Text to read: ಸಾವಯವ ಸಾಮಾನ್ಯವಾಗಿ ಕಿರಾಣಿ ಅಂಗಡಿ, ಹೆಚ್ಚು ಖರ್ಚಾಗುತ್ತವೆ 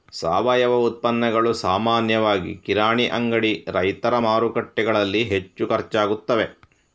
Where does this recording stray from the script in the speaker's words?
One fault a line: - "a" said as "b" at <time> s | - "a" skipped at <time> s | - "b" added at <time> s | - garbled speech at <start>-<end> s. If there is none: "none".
- "ಉತ್ಪನ್ನಗಳು" added at 0.8 s
- "ರೈತರ ಮಾರುಕಟ್ಟೆಗಳಲ್ಲಿ" added at 3.7 s